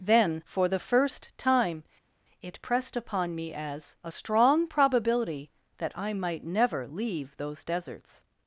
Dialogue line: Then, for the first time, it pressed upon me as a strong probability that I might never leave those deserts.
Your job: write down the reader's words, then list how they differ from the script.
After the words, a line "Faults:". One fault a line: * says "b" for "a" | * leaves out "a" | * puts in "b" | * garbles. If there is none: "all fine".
Then, for the first time, it pressed upon me as a strong probability that I might never leave those deserts.
Faults:
all fine